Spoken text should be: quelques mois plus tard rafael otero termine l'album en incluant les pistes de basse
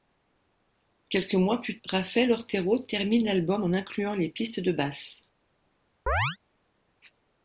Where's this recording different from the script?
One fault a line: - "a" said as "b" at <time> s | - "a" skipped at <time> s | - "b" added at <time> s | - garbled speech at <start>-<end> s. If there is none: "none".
- "tard" skipped at 1.8 s